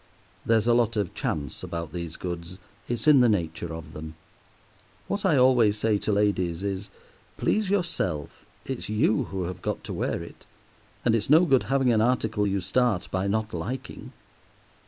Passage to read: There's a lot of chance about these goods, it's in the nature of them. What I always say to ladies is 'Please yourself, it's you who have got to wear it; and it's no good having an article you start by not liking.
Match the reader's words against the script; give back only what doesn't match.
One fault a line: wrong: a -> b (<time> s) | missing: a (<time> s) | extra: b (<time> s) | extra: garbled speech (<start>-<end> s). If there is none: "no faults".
no faults